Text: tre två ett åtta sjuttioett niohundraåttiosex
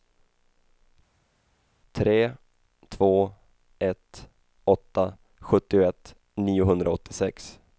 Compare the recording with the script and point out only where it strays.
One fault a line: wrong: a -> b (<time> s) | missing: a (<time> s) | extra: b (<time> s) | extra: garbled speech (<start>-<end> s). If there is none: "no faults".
no faults